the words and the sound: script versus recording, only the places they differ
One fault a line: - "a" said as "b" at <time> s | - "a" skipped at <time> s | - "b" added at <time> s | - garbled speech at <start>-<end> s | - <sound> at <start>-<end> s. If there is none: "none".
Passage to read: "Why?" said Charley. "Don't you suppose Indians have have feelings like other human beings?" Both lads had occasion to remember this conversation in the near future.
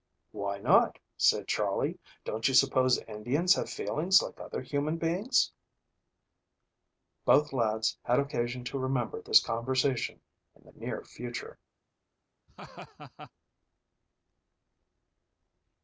- "not" added at 0.6 s
- "have" skipped at 3.7 s
- laugh at 12.5-13.3 s